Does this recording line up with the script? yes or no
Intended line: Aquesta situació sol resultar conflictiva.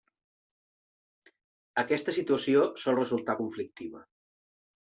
yes